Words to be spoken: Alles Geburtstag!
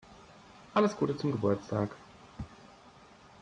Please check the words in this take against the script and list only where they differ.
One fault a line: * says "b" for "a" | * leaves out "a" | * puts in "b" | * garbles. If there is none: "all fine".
* puts in "Gute zum"